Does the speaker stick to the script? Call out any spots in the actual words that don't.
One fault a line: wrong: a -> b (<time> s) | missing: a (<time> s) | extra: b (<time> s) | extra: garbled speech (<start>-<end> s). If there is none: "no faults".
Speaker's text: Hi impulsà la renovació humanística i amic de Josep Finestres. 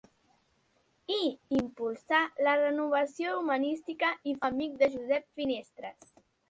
no faults